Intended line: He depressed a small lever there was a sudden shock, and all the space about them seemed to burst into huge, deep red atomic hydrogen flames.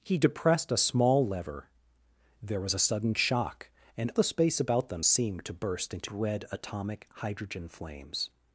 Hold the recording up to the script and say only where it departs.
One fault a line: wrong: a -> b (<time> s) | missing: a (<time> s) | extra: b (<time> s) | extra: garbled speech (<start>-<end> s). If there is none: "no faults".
missing: all (4.1 s)
missing: huge deep (6.1 s)